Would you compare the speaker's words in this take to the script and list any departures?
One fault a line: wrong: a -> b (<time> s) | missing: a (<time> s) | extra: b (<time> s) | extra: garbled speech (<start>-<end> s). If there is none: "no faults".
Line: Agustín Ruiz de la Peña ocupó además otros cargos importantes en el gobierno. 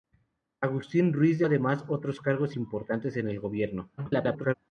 missing: la Peña ocupó (1.4 s)
extra: garbled speech (4.0-4.5 s)